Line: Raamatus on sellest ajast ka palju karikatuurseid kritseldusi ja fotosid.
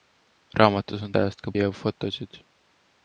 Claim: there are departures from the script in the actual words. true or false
true